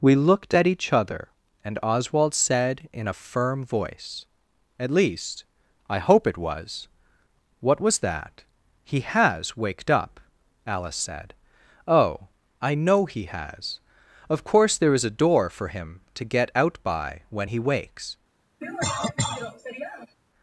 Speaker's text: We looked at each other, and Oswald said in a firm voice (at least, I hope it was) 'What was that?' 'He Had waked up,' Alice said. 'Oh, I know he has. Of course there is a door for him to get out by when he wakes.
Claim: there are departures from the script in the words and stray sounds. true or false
true